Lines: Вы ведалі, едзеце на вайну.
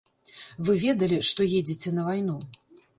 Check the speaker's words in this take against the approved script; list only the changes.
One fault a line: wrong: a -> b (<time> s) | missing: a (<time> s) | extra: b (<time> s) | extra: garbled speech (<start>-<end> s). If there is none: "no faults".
extra: што (1.3 s)